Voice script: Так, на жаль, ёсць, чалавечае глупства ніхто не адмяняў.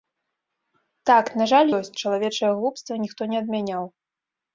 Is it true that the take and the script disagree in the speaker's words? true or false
false